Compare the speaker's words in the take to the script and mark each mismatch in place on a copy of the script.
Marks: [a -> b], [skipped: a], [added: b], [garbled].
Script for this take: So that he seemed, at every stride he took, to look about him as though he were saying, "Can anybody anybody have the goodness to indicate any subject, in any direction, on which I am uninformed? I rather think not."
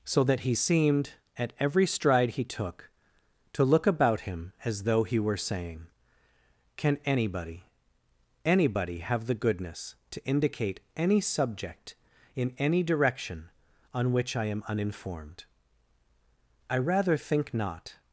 So that he seemed, at every stride he took, to look about him as though he were saying, "Can anybody anybody have the goodness to indicate any subject, in any direction, on which I am uninformed? I rather think not."